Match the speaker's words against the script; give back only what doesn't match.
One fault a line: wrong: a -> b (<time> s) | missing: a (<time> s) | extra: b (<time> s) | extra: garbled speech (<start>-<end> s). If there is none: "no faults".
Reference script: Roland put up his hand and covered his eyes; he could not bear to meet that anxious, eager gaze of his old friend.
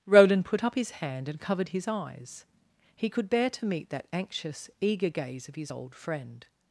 missing: not (3.3 s)